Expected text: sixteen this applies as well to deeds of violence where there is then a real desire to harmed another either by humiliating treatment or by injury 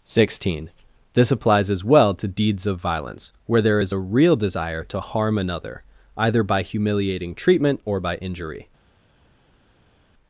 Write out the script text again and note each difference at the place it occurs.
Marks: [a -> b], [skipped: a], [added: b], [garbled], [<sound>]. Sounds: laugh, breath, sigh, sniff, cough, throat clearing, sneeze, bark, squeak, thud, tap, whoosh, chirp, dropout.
sixteen this applies as well to deeds of violence where there is [skipped: then] a real desire to [harmed -> harm] another either by humiliating treatment or by injury